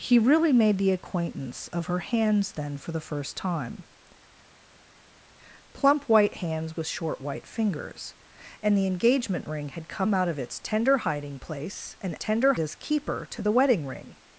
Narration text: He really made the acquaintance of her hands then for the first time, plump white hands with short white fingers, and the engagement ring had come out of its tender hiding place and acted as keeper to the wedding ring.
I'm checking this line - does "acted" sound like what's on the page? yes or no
no